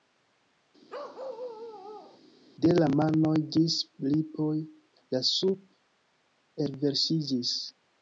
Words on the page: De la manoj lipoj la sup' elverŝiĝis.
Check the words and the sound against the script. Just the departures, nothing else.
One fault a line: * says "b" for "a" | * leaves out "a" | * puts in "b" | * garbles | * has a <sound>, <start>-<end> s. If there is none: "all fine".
* has a bark, 0.9-2.2 s
* puts in "ĝis"